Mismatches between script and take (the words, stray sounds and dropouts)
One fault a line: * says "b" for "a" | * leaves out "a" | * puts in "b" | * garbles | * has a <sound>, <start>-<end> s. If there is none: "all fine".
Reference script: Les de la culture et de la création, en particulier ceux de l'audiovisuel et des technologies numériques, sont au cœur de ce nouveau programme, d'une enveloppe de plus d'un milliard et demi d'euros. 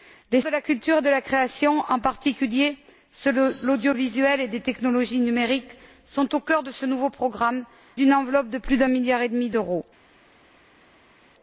all fine